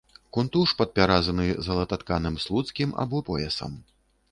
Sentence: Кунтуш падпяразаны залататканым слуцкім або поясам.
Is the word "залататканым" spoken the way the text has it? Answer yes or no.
yes